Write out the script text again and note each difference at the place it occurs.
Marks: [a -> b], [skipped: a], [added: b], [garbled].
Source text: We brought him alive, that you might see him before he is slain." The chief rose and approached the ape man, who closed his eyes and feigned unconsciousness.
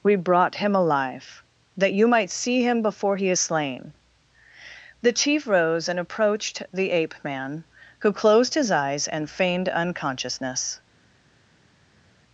We brought him alive, that you might see him before he is slain." The chief rose and approached the ape man, who closed his eyes and feigned unconsciousness.